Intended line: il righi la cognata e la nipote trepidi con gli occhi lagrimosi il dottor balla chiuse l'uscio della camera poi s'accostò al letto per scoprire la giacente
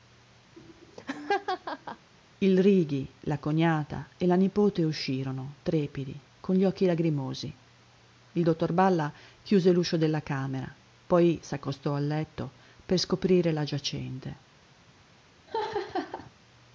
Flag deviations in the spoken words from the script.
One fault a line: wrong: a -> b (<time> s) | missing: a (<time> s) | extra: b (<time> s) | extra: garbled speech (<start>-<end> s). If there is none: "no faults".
extra: uscirono (4.8 s)